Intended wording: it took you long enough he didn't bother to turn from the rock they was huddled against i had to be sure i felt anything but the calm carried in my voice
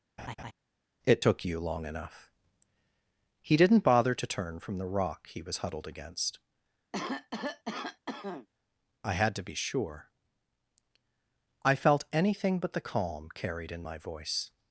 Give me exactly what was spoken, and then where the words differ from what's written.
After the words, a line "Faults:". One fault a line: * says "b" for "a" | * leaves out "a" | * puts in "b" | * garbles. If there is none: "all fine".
it took you long enough he didn't bother to turn from the rock he was huddled against i had to be sure i felt anything but the calm carried in my voice
Faults:
* says "he" for "they"